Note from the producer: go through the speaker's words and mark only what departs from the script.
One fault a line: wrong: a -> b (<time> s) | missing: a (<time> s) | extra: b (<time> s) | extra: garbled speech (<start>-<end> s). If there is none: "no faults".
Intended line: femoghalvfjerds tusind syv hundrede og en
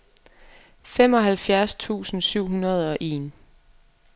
no faults